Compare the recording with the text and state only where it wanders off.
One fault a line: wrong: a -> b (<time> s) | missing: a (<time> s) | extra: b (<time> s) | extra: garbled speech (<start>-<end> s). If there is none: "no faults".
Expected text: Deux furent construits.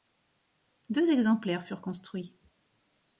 extra: exemplaires (1.1 s)